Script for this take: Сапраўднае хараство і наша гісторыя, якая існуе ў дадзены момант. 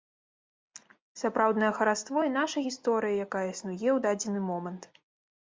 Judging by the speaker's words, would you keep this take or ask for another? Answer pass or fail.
pass